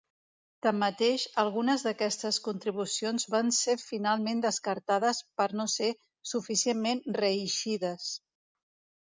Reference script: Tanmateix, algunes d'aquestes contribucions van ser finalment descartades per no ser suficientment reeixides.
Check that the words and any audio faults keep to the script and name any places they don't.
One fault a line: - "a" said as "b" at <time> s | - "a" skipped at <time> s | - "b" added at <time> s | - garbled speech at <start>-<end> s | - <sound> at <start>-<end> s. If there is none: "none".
none